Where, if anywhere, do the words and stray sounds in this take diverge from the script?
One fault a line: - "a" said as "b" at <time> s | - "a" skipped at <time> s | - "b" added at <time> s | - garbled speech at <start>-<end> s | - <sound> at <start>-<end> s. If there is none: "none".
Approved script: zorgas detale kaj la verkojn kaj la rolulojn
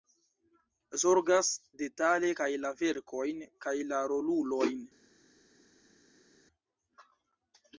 none